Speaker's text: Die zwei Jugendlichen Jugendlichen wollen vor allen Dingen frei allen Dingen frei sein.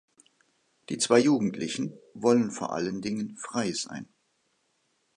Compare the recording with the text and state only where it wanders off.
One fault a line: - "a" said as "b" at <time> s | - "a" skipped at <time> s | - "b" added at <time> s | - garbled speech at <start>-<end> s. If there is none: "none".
- "Jugendlichen" skipped at 2.0 s
- "allen Dingen frei" skipped at 3.7 s